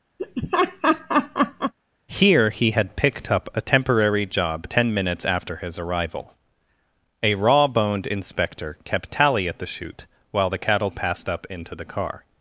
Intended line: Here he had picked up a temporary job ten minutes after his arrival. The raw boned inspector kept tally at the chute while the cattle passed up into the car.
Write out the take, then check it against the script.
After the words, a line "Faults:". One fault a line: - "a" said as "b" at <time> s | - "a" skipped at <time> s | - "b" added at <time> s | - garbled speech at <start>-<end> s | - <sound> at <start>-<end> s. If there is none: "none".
Here he had picked up a temporary job ten minutes after his arrival. A raw boned inspector kept tally at the chute while the cattle passed up into the car.
Faults:
- laugh at 0.2-1.7 s
- "The" said as "A" at 7.2 s